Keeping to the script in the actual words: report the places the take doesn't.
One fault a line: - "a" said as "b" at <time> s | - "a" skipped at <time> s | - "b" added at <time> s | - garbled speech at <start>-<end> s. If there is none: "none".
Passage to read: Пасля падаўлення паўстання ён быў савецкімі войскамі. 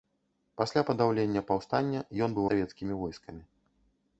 none